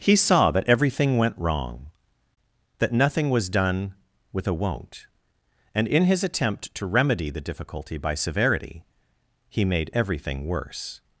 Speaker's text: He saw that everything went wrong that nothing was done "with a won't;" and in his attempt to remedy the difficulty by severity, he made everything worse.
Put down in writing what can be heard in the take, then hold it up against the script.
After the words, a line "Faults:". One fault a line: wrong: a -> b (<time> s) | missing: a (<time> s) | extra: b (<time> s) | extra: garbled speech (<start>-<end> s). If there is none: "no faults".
He saw that everything went wrong that nothing was done "with a won't;" and in his attempt to remedy the difficulty by severity, he made everything worse.
Faults:
no faults